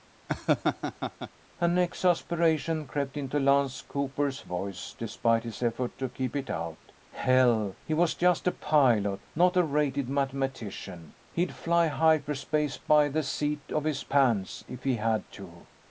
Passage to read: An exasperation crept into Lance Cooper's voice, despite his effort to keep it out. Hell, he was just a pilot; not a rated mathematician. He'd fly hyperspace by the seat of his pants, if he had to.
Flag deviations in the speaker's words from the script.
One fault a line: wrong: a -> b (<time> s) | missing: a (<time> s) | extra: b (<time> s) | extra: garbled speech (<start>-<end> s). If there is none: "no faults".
no faults